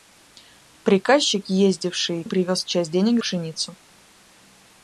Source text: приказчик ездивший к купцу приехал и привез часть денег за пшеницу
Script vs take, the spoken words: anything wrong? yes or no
yes